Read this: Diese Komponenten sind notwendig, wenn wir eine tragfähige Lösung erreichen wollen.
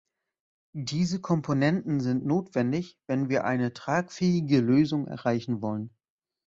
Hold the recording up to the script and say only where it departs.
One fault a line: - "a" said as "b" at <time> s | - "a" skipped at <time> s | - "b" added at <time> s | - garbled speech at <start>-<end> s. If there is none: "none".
none